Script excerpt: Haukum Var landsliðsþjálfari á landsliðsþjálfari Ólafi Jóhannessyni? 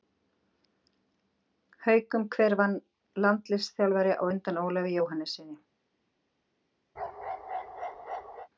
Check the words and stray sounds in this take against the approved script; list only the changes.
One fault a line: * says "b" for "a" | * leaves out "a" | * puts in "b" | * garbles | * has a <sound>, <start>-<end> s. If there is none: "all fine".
* puts in "Hver"
* says "undan" for "landsliðsþjálfari"
* has a bark, 7.0-8.5 s